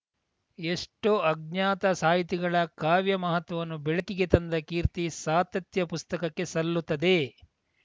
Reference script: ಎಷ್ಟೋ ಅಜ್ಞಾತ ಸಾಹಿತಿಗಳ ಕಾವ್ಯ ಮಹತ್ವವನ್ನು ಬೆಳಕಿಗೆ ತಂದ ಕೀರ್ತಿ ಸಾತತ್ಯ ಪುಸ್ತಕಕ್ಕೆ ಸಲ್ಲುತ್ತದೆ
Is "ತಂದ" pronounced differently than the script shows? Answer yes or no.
no